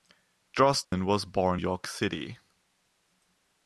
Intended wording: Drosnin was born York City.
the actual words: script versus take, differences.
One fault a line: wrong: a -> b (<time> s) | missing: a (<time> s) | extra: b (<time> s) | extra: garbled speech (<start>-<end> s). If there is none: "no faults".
no faults